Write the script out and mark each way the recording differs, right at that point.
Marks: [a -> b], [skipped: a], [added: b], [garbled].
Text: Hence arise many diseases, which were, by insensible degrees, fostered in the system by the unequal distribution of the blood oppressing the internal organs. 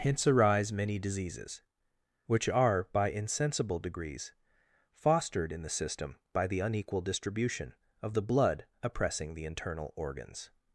Hence arise many diseases, which [were, -> are] by insensible degrees, fostered in the system by the unequal distribution of the blood oppressing the internal organs.